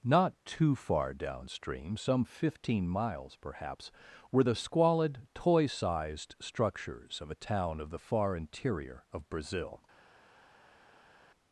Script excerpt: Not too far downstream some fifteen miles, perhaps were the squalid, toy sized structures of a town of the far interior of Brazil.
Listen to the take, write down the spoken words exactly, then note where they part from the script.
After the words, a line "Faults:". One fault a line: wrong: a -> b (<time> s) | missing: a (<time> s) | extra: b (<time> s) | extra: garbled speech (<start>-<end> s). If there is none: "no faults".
Not too far downstream some fifteen miles, perhaps were the squalid, toy sized structures of a town of the far interior of Brazil.
Faults:
no faults